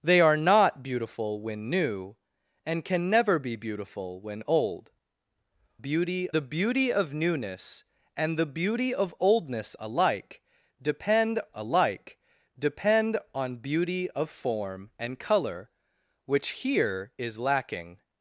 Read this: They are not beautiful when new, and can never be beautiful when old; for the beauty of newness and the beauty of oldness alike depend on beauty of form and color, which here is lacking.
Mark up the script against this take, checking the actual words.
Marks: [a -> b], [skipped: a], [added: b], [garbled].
They are not beautiful when new, and can never be beautiful when old; [for -> beauty] the beauty of newness and the beauty of oldness alike depend [added: alike depend] on beauty of form and color, which here is lacking.